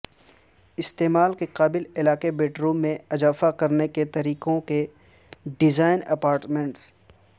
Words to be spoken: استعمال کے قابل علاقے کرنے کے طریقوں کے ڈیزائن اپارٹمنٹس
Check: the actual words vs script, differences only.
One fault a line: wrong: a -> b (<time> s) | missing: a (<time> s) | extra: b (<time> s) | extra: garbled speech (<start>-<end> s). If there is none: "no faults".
extra: بیڈروم میں اضافہ (2.3 s)